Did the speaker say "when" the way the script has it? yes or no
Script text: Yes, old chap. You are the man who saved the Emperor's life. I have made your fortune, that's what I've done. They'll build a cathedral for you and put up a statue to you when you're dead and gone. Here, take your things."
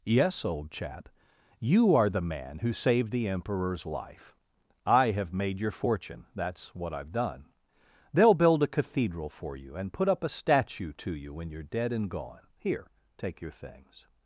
yes